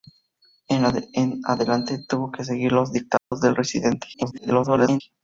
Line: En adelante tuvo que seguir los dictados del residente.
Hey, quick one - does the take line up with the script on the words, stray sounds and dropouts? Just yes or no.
no